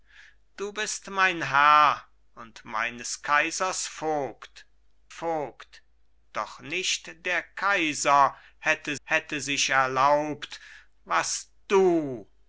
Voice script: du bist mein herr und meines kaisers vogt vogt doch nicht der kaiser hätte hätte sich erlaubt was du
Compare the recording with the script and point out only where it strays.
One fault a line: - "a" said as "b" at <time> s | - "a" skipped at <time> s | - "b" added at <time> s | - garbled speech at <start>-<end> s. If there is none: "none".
none